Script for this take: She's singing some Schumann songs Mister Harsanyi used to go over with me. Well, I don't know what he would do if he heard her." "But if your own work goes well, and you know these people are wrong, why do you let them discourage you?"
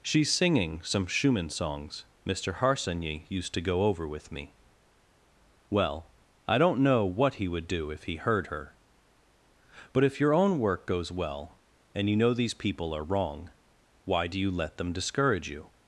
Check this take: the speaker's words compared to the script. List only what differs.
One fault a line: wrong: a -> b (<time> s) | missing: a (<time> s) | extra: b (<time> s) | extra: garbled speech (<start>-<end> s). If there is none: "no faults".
no faults